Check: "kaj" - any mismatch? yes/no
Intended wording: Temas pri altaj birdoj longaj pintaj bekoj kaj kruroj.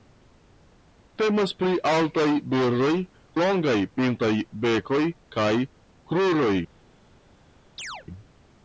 no